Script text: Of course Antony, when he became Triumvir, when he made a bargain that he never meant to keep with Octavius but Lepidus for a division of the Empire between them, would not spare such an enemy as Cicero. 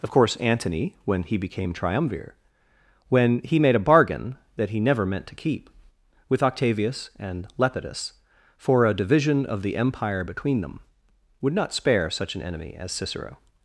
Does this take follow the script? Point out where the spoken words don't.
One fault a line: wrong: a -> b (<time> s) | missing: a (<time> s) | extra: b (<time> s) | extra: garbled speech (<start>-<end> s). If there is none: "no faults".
wrong: but -> and (7.2 s)